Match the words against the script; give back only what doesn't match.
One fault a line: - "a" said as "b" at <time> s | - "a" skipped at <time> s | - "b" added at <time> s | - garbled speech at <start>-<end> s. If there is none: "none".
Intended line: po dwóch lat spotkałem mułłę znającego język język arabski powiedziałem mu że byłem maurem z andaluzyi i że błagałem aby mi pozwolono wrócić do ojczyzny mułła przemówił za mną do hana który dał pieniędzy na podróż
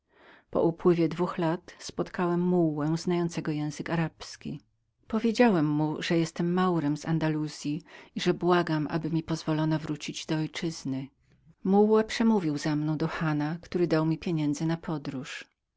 - "upływie" added at 0.6 s
- "język" skipped at 3.9 s
- "mi" added at 14.0 s